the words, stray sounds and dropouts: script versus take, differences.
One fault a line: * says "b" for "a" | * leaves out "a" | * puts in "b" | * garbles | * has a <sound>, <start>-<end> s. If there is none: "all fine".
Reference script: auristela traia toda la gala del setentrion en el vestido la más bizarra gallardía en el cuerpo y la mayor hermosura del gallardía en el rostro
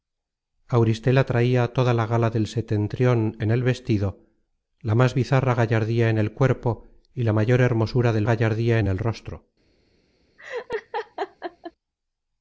* has a laugh, 10.4-11.7 s